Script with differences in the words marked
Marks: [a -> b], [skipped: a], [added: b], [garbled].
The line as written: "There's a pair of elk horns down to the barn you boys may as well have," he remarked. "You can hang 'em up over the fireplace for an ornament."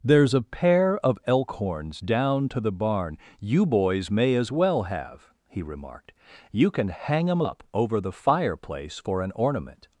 "There's a pair of elk horns down to the barn you boys may as well have," he remarked. "You can hang 'em up over the fireplace for an ornament."